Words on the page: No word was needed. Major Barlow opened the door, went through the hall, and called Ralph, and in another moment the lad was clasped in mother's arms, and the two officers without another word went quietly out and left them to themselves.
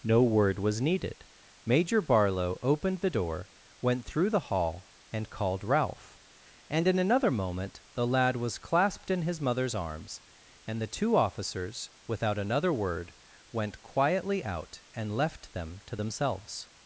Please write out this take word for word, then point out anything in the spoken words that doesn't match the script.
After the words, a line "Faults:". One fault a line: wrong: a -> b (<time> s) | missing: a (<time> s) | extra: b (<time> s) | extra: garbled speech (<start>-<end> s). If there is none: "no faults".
No word was needed. Major Barlow opened the door, went through the hall, and called Ralph, and in another moment the lad was clasped in his mother's arms, and the two officers without another word went quietly out and left them to themselves.
Faults:
extra: his (9.2 s)